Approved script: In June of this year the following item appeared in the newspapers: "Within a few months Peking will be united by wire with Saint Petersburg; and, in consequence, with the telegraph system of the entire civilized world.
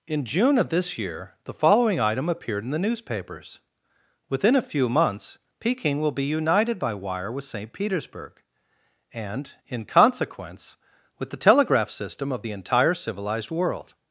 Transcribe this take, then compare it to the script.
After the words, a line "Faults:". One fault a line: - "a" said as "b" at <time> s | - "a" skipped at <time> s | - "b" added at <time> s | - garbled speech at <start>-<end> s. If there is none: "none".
In June of this year the following item appeared in the newspapers: "Within a few months Peking will be united by wire with Saint Petersburg; and, in consequence, with the telegraph system of the entire civilized world.
Faults:
none